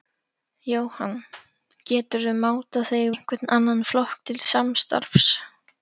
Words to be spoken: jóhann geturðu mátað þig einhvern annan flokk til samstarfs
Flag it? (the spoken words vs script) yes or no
no